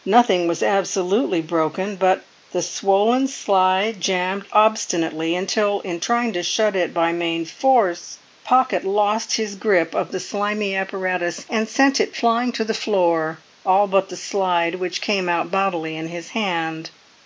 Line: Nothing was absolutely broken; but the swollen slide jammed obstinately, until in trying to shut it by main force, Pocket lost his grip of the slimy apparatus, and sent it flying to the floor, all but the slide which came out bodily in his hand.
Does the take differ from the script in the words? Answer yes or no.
no